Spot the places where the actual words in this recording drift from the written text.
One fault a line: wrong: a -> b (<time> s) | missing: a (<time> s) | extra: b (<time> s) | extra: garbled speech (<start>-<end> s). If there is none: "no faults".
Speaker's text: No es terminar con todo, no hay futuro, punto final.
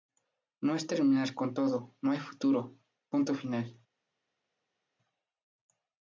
no faults